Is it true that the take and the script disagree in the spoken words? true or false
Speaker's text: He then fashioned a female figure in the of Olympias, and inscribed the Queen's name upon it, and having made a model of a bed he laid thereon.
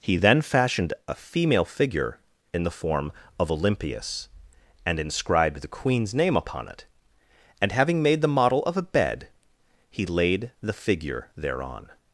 true